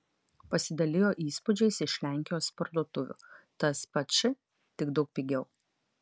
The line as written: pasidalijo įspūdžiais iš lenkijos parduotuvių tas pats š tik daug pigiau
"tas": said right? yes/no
yes